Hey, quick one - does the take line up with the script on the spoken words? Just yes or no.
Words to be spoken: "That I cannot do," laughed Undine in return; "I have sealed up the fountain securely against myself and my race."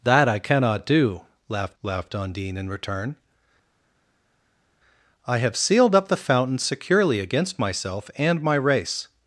no